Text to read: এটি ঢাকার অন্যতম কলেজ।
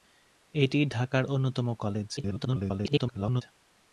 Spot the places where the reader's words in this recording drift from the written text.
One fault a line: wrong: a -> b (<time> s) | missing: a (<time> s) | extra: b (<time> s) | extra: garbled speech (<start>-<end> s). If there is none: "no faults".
extra: garbled speech (2.2-3.4 s)